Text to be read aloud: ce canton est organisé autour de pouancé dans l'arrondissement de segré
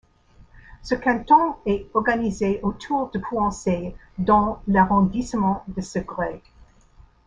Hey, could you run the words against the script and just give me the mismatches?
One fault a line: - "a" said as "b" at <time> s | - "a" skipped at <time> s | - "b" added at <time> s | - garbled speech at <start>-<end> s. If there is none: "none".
none